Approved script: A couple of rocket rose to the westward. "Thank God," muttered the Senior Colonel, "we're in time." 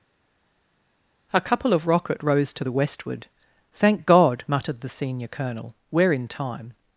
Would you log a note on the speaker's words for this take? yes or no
no